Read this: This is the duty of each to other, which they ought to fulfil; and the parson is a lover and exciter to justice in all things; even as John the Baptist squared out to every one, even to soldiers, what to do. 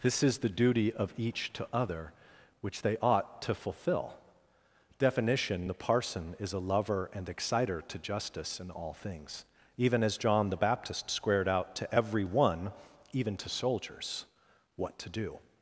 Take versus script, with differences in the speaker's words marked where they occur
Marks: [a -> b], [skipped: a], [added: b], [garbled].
This is the duty of each to other, which they ought to [fulfil; and -> fulfill definition] the parson is a lover and exciter to justice in all things; even as John the Baptist squared out to every one, even to soldiers, what to do.